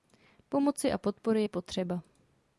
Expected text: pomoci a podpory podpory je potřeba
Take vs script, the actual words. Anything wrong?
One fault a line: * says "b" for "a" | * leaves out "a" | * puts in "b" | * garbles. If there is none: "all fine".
* leaves out "podpory"